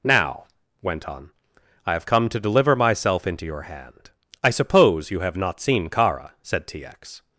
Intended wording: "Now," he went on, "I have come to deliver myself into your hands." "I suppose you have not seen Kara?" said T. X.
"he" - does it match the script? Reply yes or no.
no